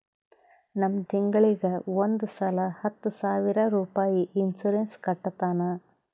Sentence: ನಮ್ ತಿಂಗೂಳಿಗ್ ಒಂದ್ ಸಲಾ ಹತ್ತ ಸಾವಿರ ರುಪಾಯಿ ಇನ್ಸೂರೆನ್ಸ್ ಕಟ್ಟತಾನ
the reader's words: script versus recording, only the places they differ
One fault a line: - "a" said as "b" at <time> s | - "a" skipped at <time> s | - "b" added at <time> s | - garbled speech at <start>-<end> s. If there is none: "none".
none